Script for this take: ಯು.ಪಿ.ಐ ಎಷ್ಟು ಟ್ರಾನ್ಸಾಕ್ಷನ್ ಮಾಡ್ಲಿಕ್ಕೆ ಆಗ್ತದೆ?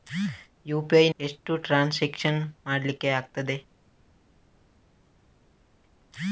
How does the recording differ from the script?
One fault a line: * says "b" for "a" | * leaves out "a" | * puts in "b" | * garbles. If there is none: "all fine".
all fine